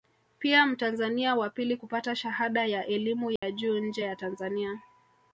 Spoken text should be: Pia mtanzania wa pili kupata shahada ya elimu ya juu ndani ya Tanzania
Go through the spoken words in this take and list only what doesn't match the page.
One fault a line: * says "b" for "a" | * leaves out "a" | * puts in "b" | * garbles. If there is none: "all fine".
* says "nje" for "ndani"